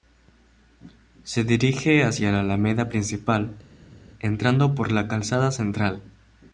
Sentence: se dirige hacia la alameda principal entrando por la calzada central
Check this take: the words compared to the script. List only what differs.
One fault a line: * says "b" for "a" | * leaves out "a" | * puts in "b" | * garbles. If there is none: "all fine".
all fine